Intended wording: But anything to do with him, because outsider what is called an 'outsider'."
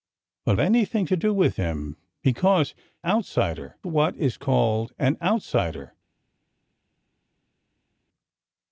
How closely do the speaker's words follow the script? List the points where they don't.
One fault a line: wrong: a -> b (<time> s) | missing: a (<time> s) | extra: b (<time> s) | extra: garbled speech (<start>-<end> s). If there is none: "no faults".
no faults